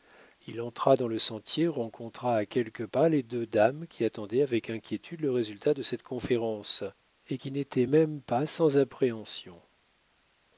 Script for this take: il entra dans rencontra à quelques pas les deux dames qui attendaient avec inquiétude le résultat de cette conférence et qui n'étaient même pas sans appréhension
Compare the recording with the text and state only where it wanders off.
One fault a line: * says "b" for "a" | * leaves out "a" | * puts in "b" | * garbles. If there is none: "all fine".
* puts in "le sentier"